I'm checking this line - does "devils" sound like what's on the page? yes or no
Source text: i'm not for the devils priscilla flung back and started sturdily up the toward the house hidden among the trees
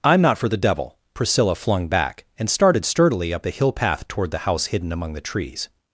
no